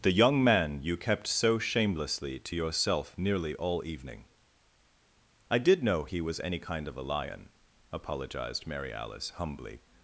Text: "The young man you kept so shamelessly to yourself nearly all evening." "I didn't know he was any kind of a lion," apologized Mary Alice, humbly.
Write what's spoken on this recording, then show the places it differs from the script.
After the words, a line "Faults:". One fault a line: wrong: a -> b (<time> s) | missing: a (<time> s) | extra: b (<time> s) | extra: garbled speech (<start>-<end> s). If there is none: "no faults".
"The young man you kept so shamelessly to yourself nearly all evening." "I did know he was any kind of a lion," apologized Mary Alice, humbly.
Faults:
wrong: didn't -> did (5.6 s)